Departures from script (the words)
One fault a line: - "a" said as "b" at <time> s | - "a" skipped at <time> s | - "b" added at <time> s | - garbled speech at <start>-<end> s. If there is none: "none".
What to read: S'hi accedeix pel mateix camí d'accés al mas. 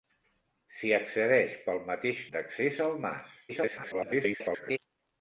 - "camí" skipped at 2.2 s
- garbled speech at 3.5-4.8 s